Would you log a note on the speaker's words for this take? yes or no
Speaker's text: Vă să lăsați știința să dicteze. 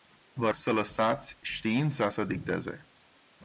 no